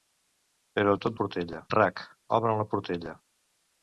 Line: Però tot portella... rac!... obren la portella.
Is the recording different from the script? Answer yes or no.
no